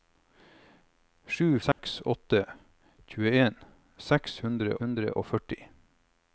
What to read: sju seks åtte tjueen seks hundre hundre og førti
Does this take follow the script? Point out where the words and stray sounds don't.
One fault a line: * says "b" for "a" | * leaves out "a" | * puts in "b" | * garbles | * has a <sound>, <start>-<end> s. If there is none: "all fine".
* has a dropout, 1.7-1.8 s